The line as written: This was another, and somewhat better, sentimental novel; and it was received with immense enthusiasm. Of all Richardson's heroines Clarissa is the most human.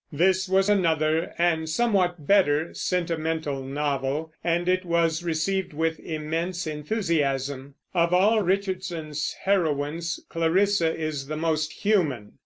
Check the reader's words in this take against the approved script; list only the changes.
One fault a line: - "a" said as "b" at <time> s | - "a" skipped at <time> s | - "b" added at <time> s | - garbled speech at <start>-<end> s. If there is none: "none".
none